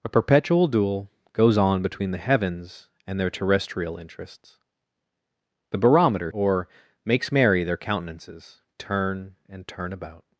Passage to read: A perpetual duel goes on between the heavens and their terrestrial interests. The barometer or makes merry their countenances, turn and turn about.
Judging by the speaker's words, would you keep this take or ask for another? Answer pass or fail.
pass